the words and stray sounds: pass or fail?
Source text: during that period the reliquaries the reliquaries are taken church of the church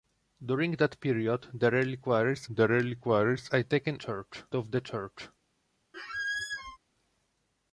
fail